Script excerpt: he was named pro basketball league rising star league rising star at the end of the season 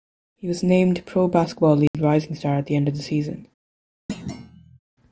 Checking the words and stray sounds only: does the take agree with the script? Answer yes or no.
no